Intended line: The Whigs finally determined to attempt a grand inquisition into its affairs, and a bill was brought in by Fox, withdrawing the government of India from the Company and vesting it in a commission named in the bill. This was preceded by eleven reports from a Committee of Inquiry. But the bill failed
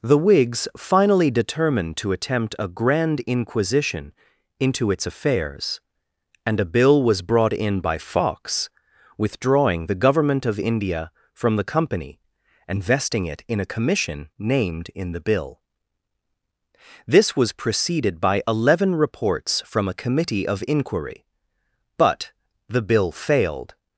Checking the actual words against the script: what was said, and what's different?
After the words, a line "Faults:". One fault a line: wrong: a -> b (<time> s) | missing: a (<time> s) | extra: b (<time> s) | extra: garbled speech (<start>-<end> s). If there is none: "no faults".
The Whigs finally determined to attempt a grand inquisition into its affairs, and a bill was brought in by Fox, withdrawing the government of India from the Company and vesting it in a commission named in the bill. This was preceded by eleven reports from a Committee of Inquiry. But the bill failed
Faults:
no faults